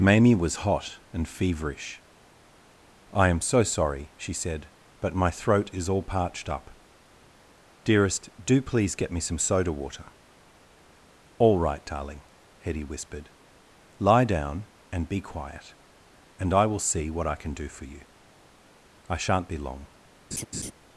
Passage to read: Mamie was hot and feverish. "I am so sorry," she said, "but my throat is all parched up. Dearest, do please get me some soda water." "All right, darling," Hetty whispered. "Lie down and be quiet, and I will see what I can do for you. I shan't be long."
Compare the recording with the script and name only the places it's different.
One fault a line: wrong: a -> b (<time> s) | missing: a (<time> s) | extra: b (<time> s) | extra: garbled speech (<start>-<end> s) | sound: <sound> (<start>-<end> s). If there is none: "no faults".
sound: laugh (20.3-20.7 s)